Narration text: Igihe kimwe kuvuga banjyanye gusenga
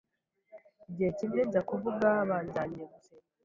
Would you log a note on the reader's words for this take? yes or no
yes